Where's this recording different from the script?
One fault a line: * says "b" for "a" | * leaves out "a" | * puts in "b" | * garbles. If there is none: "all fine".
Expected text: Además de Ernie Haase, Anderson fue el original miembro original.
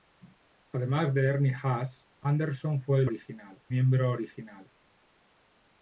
all fine